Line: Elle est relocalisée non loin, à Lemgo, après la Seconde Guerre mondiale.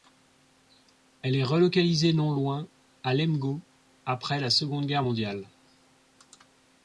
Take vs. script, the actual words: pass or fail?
pass